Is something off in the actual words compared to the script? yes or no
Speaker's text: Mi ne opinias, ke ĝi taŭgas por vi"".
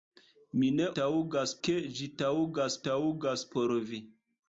yes